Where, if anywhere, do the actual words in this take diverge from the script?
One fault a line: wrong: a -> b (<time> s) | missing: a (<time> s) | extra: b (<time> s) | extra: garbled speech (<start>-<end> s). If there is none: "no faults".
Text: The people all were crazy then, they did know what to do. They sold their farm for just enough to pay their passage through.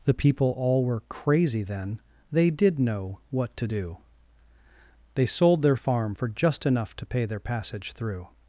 no faults